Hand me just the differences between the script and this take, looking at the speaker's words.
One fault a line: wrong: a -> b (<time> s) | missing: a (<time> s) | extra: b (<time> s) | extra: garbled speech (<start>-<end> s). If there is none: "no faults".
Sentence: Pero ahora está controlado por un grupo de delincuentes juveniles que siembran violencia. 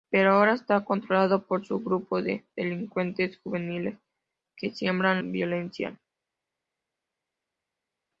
no faults